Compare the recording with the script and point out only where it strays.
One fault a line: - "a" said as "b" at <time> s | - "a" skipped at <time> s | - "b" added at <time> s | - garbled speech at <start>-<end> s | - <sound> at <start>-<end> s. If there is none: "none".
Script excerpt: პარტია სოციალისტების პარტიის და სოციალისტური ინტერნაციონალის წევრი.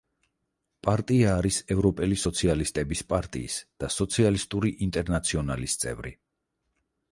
- "არის ევროპელი" added at 1.4 s